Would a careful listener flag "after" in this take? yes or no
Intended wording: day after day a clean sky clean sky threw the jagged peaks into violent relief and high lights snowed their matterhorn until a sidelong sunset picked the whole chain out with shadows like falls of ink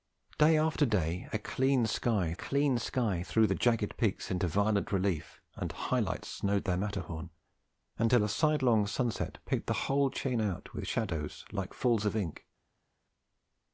no